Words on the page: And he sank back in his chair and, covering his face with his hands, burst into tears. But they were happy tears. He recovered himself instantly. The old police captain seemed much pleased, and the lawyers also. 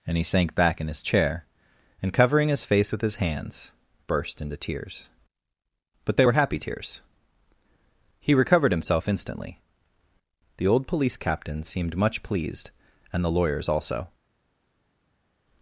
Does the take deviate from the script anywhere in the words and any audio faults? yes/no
no